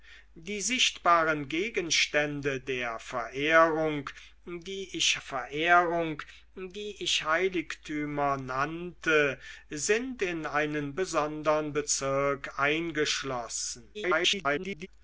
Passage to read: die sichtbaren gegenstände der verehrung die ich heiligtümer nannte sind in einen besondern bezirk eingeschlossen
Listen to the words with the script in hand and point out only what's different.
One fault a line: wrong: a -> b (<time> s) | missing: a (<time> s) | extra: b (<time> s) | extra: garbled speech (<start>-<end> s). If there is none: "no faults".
extra: verehrung die ich (5.2 s)
extra: garbled speech (13.9-14.9 s)